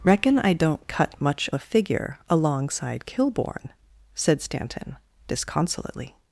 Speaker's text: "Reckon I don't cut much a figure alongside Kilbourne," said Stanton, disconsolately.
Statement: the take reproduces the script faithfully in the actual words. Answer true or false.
true